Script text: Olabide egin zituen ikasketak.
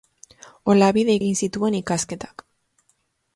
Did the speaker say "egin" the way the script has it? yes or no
yes